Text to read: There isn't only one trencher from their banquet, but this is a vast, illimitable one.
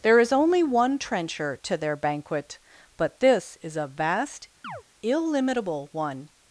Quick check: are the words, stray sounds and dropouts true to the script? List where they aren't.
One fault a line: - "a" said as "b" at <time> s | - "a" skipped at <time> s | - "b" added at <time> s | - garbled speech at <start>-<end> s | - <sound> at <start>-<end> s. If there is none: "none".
- "isn't" said as "is" at 0.2 s
- "from" said as "to" at 1.6 s
- chirp at 4.6-4.8 s